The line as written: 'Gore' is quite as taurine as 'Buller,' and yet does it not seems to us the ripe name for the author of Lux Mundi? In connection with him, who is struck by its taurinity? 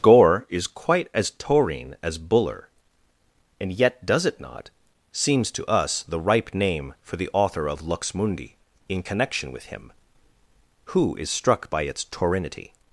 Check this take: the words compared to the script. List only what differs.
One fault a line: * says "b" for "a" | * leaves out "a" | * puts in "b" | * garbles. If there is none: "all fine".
all fine